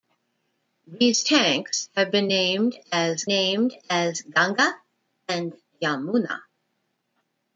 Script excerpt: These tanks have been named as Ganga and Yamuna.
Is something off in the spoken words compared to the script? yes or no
yes